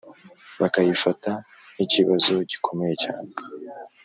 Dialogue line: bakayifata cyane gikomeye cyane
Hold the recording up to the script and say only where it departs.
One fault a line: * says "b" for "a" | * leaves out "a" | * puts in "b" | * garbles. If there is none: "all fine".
* says "nk'ikibazo" for "cyane"